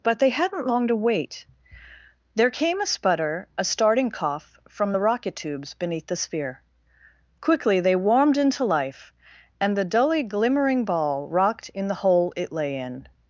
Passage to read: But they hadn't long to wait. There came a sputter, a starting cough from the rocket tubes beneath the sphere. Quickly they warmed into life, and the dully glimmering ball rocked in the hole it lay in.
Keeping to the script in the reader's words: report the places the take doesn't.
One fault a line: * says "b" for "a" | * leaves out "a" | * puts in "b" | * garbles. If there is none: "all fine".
all fine